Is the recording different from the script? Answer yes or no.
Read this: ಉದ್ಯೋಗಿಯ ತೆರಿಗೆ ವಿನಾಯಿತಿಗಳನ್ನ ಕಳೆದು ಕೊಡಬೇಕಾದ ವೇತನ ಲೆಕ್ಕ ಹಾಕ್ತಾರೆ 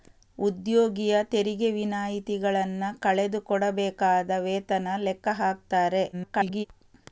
yes